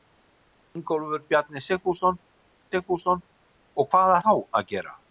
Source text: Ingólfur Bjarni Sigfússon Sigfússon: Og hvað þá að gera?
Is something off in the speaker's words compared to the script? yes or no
no